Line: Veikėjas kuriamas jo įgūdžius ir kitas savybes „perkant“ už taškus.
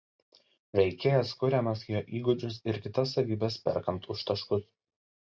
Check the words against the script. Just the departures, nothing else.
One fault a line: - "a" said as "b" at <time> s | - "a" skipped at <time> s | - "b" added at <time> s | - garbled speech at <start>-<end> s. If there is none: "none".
none